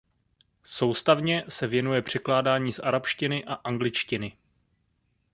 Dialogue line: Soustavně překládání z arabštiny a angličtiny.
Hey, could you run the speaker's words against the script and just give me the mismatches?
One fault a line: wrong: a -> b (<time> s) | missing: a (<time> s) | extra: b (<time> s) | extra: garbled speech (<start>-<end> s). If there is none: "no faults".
extra: se věnuje (1.5 s)